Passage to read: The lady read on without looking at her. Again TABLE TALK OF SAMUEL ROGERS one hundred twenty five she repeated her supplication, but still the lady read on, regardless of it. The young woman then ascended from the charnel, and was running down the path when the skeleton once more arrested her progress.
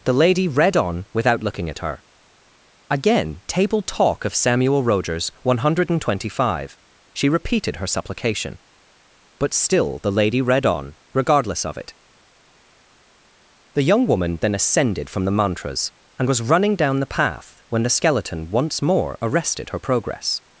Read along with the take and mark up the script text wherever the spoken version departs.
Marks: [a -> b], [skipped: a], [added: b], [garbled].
The lady read on without looking at her. Again TABLE TALK OF SAMUEL ROGERS one hundred twenty five she repeated her supplication, but still the lady read on, regardless of it. The young woman then ascended from the [charnel, -> mantras] and was running down the path when the skeleton once more arrested her progress.